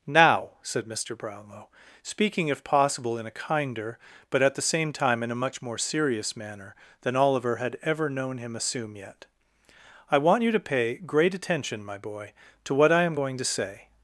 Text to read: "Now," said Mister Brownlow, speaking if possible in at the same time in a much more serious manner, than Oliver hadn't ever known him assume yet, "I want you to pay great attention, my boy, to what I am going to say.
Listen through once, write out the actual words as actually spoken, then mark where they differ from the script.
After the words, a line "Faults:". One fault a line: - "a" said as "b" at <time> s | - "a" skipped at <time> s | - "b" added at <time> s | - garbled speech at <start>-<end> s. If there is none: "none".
"Now," said Mister Brownlow, speaking if possible in a kinder, but at the same time in a much more serious manner, than Oliver had ever known him assume yet, "I want you to pay great attention, my boy, to what I am going to say.
Faults:
- "a kinder but" added at 3.3 s
- "hadn't" said as "had" at 7.6 s